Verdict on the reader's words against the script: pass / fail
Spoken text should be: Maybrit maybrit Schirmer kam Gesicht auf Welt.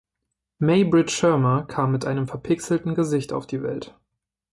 fail